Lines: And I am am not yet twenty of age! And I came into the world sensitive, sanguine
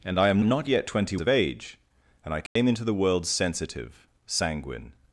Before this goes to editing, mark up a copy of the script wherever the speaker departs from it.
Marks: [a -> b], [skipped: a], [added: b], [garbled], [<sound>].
And I am am not yet twenty of age! And I came [dropout] into the world sensitive, sanguine